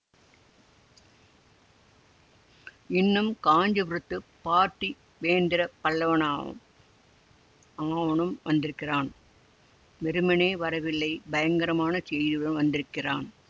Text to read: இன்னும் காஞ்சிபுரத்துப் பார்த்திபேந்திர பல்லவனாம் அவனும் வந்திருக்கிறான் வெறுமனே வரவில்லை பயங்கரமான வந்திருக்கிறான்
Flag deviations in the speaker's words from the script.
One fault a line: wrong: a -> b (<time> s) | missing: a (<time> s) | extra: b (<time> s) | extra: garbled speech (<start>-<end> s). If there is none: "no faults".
extra: செய்தியுடன் (12.1 s)